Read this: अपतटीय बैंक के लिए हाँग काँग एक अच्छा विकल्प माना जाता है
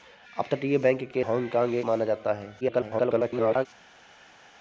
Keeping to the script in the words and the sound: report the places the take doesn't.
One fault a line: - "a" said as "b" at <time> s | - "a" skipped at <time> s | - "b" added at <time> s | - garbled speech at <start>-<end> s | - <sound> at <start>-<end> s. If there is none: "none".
- "लिए" skipped at 1.2 s
- "अच्छा विकल्प" skipped at 1.9 s
- garbled speech at 2.6-3.7 s